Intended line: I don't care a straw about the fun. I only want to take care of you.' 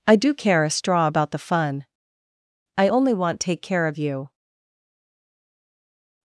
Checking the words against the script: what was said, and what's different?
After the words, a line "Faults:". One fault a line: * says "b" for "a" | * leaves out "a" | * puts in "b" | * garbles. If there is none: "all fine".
I do care a straw about the fun. I only want take care of you.'
Faults:
* says "do" for "don't"
* leaves out "to"